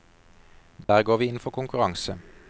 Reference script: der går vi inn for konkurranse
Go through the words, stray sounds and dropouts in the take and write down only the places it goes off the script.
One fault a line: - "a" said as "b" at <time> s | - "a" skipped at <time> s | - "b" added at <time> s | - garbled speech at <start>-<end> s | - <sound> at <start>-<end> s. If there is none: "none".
- dropout at 0.8-0.9 s